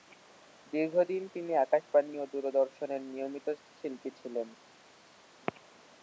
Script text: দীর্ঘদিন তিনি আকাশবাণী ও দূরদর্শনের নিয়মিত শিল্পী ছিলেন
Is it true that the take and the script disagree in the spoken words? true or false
false